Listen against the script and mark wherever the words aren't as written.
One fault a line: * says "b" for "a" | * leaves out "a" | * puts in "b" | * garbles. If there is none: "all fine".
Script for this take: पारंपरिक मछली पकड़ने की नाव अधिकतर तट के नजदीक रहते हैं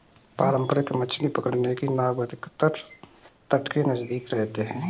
all fine